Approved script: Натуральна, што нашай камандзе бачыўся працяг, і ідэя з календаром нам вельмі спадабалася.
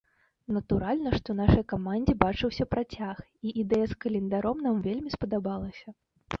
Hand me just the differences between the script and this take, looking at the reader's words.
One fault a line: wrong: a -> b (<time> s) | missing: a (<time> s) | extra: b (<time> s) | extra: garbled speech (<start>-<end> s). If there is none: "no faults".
no faults